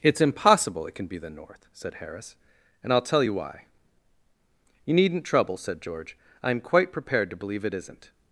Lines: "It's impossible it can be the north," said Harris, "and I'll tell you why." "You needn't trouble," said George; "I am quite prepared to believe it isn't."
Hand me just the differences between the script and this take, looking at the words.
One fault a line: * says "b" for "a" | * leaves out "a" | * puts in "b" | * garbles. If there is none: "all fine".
all fine